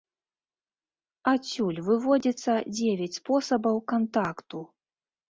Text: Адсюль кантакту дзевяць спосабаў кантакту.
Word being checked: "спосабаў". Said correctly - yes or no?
yes